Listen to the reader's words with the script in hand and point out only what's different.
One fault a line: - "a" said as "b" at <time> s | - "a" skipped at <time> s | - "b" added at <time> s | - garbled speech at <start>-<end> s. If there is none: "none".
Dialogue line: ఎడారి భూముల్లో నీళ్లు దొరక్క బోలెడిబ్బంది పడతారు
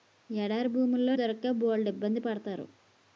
- "నీళ్లు" skipped at 1.1 s